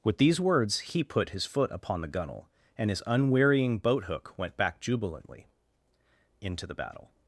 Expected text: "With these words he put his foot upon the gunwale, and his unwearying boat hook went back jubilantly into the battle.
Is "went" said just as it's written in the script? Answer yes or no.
yes